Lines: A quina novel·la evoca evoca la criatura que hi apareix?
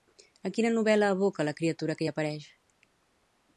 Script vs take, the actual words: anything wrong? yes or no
yes